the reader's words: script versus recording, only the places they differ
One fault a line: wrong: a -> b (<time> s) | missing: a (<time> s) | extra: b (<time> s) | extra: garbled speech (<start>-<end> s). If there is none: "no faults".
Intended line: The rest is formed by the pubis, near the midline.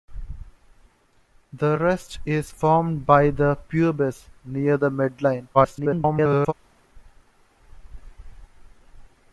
extra: garbled speech (5.5-6.5 s)